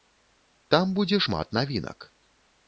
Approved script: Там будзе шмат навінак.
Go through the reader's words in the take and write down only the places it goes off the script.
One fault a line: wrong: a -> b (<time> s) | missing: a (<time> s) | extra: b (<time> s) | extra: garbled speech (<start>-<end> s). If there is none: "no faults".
no faults